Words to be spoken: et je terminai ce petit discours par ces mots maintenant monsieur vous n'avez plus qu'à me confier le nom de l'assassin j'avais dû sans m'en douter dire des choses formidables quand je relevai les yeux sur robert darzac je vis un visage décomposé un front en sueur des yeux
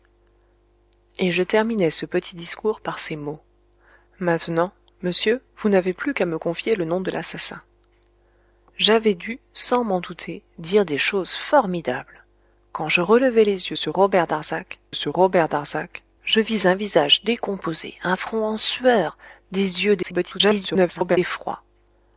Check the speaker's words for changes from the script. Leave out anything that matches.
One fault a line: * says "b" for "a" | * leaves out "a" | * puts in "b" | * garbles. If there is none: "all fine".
* puts in "sur robert darzac"
* garbles